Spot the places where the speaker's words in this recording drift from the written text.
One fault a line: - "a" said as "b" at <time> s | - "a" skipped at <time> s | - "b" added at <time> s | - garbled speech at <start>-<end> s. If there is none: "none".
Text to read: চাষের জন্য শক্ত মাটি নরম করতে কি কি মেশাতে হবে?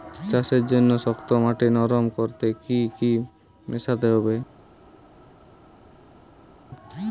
none